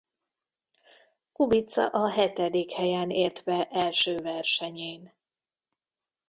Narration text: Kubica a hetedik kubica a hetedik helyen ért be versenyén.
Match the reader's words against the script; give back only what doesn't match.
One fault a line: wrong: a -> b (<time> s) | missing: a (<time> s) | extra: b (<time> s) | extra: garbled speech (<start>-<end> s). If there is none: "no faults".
missing: kubica a hetedik (2.7 s)
extra: első (3.7 s)